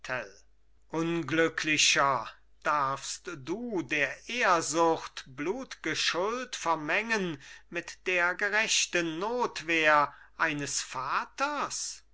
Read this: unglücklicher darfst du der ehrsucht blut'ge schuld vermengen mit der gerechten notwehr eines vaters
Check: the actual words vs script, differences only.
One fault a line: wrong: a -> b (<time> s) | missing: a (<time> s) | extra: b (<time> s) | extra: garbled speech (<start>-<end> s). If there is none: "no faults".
no faults